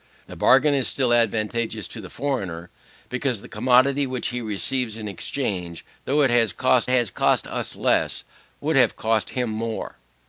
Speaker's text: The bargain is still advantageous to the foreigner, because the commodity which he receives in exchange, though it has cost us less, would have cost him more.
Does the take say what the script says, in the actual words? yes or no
no